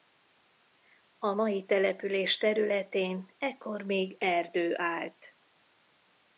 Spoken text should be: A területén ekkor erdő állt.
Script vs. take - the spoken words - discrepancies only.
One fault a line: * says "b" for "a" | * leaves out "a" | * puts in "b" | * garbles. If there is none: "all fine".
* puts in "mai település"
* puts in "még"